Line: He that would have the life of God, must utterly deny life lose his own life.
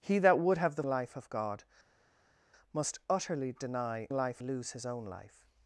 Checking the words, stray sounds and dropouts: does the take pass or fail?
pass